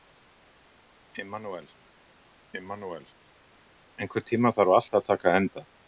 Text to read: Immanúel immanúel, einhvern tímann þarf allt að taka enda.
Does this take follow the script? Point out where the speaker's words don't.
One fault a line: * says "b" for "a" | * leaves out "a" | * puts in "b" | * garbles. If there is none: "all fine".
all fine